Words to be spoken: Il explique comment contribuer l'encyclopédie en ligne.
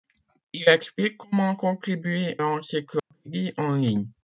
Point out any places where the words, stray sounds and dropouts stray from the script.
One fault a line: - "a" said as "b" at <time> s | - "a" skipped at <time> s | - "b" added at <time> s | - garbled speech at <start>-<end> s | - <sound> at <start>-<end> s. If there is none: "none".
- dropout at 3.0-3.1 s